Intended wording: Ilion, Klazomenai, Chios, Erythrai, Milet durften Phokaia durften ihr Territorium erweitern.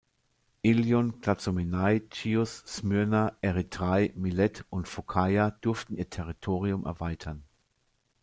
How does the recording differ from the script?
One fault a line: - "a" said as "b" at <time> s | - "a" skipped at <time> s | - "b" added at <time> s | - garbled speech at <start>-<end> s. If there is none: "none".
- "Smyrna" added at 2.6 s
- "durften" said as "und" at 4.7 s